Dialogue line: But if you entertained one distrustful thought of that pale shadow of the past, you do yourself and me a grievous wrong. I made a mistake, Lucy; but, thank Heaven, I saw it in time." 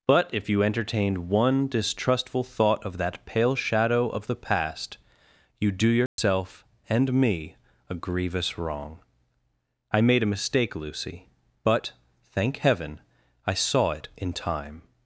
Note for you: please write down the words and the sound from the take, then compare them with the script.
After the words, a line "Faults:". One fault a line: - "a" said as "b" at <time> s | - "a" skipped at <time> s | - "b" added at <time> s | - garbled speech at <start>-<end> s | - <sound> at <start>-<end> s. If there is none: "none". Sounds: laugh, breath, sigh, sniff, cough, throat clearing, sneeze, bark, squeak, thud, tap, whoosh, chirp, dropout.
But if you entertained one distrustful thought of that pale shadow of the past, you do yourself and me a grievous wrong. I made a mistake, Lucy; but, thank Heaven, I saw it in time."
Faults:
- dropout at 6.1-6.2 s